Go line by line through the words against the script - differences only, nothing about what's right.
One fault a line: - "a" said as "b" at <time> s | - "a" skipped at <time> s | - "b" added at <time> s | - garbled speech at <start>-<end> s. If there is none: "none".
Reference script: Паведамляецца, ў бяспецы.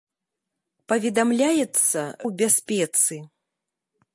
none